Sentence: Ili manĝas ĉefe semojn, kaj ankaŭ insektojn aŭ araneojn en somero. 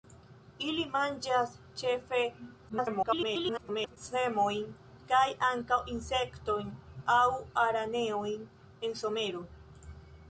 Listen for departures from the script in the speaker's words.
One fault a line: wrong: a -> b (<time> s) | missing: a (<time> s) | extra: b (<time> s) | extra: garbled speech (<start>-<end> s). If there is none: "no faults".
extra: garbled speech (2.7-4.0 s)